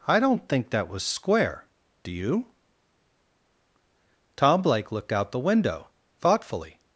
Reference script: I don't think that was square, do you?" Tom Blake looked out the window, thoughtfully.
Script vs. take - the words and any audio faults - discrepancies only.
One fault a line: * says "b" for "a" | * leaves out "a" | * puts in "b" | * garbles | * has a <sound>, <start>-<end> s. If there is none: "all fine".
all fine